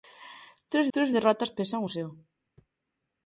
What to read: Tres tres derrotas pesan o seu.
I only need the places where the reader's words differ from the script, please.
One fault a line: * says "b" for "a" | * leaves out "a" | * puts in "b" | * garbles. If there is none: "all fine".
all fine